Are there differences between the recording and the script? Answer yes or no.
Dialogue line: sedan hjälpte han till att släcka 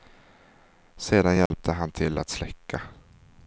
no